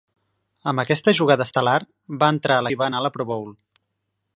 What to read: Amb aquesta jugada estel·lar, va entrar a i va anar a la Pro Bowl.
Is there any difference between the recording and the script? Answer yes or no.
no